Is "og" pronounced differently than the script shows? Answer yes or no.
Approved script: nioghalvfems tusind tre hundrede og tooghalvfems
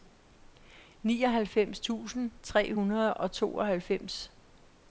no